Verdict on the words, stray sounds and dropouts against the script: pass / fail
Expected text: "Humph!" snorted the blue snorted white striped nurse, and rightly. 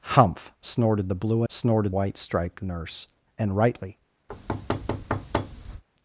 fail